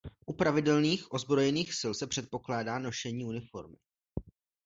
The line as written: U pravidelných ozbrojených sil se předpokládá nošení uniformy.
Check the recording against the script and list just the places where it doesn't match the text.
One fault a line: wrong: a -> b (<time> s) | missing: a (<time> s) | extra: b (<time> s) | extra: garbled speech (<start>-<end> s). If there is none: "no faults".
no faults